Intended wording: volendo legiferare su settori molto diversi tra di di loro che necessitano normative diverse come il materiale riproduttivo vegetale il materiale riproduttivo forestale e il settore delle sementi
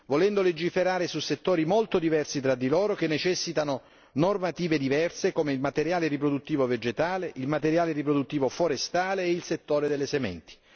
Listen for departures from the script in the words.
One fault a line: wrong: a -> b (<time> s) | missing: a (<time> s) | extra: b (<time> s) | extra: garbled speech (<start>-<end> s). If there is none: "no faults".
missing: di (2.7 s)